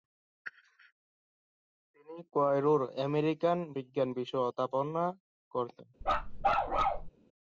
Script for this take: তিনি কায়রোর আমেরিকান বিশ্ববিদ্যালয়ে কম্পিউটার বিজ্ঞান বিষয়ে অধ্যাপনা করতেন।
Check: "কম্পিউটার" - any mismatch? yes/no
yes